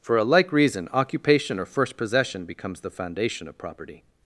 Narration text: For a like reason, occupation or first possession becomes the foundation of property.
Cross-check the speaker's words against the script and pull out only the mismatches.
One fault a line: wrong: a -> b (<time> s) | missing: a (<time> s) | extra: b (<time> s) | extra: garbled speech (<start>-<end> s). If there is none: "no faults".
no faults